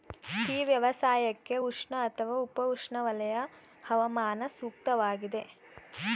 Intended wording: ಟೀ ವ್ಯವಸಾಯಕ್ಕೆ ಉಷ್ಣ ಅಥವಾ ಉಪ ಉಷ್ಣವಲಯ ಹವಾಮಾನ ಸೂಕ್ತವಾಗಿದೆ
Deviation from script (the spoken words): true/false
false